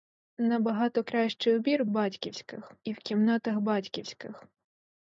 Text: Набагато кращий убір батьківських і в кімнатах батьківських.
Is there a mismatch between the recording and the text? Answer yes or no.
no